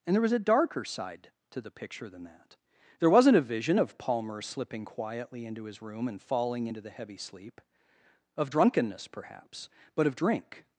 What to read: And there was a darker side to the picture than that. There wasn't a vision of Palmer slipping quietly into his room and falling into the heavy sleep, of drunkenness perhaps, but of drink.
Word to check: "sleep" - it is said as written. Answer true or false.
true